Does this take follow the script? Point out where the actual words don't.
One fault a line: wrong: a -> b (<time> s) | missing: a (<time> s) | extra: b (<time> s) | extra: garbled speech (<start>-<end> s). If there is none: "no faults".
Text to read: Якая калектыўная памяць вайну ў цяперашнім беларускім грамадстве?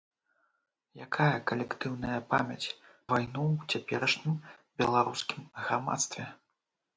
no faults